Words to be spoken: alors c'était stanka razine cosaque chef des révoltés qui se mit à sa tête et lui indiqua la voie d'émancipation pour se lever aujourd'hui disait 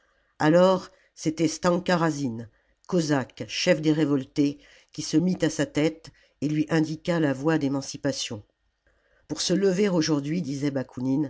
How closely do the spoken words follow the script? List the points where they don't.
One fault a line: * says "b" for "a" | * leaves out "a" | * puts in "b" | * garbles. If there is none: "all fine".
all fine